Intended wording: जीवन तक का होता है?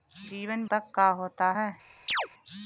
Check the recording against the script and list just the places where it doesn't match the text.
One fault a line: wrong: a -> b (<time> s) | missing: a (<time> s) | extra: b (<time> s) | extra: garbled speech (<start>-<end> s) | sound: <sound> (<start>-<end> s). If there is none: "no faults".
sound: chirp (2.1-2.3 s)